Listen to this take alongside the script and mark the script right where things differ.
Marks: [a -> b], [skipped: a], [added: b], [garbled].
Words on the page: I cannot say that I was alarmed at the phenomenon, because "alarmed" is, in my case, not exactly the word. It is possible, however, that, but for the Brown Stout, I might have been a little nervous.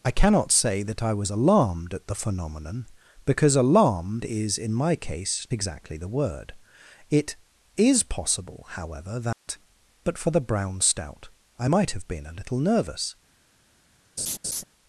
I cannot say that I was alarmed at the phenomenon, because "alarmed" is, in my case, [skipped: not] exactly the word. It is possible, however, that, but for the Brown Stout, I might have been a little nervous.